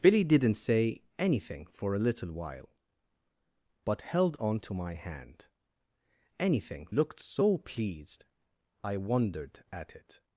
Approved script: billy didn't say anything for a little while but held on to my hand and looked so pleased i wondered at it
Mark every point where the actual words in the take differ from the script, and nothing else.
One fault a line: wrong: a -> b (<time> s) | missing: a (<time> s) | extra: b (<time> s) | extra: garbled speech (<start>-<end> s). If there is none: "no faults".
wrong: and -> anything (6.4 s)